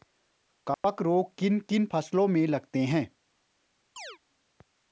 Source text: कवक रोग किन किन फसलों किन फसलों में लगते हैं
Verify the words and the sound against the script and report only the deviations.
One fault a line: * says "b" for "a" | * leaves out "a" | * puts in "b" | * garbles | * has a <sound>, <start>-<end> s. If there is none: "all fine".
* has a dropout, 0.7-0.8 s
* leaves out "किन फसलों"
* has a chirp, 4.0-4.2 s